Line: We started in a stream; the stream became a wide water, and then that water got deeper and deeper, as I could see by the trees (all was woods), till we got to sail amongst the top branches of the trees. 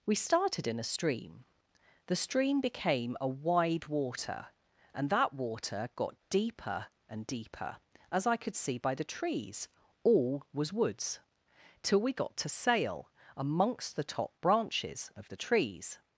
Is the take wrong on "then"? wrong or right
wrong